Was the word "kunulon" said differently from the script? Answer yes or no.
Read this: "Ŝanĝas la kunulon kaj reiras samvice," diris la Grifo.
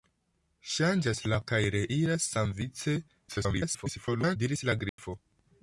yes